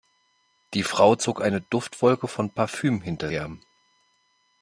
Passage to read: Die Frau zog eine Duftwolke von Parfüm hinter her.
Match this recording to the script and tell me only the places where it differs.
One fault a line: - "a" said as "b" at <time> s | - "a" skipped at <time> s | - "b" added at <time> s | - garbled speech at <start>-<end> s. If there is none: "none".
none